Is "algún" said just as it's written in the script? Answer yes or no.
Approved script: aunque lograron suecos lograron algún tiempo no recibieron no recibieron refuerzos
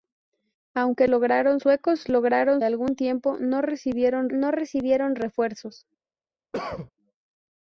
yes